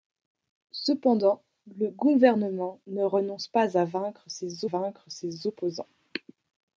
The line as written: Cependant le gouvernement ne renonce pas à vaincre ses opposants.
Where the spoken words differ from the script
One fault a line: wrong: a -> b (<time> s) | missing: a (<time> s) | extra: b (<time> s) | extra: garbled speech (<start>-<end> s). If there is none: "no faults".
extra: vaincre ses (4.6 s)